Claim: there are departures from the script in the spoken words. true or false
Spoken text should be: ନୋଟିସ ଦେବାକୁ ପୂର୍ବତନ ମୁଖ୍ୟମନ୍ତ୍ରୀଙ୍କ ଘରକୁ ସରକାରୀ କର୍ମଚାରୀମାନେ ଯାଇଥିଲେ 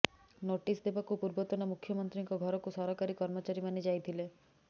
false